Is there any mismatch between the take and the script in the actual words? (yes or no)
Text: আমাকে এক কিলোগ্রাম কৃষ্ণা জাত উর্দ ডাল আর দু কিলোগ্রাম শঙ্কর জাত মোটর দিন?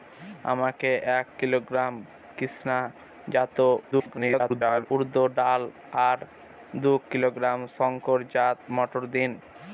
yes